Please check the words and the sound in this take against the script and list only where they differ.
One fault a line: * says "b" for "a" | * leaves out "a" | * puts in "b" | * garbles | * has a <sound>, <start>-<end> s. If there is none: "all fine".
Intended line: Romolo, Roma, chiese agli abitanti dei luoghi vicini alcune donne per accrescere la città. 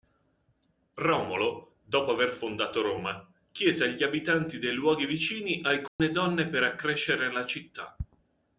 * puts in "dopo aver fondato"
* has a dropout, 5.9-6.0 s